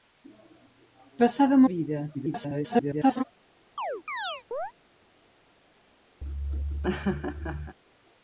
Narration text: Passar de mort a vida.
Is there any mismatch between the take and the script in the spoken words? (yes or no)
yes